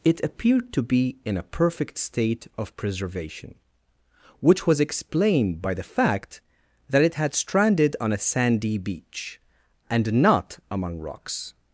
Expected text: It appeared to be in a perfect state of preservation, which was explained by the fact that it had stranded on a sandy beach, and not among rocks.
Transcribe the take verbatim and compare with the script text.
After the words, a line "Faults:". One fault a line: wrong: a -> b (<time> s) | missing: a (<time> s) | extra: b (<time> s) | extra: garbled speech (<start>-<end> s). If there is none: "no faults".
It appeared to be in a perfect state of preservation, which was explained by the fact that it had stranded on a sandy beach, and not among rocks.
Faults:
no faults